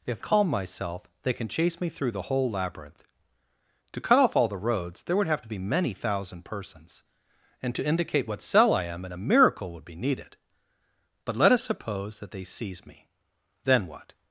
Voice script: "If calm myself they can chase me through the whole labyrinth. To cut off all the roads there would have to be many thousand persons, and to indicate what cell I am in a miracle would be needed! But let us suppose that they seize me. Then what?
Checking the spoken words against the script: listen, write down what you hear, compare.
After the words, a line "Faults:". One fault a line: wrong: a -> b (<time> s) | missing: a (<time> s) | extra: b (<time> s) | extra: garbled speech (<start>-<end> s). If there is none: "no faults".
"If calm myself they can chase me through the whole labyrinth. To cut off all the roads there would have to be many thousand persons, and to indicate what cell I am in a miracle would be needed! But let us suppose that they seize me. Then what?
Faults:
no faults